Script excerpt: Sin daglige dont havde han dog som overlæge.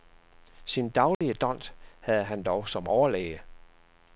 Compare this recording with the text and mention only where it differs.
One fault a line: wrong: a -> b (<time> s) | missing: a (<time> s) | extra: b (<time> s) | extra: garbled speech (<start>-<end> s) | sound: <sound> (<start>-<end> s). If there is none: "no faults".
sound: dropout (1.1-1.2 s)